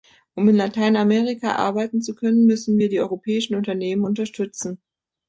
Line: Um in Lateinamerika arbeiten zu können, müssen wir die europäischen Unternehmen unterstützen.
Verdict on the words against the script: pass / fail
pass